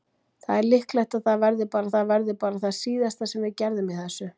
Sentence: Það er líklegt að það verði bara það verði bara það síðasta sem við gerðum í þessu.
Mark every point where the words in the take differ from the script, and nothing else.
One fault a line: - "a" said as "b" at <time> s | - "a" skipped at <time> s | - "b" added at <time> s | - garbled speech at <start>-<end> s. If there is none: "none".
none